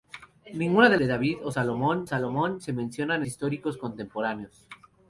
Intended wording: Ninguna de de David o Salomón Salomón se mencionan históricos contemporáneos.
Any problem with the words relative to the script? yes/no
no